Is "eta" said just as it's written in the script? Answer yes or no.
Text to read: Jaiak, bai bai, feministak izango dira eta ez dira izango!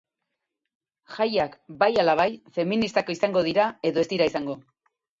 no